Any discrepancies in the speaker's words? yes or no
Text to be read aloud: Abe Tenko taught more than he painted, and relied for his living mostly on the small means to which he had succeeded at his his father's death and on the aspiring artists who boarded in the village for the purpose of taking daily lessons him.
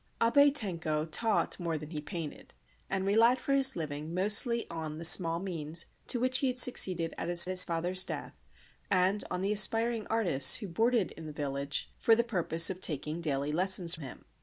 no